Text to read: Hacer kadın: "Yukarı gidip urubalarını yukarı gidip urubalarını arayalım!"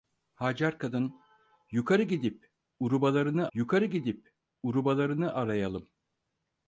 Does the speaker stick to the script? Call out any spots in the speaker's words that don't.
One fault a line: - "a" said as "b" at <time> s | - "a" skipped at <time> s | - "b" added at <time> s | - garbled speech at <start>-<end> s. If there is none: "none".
none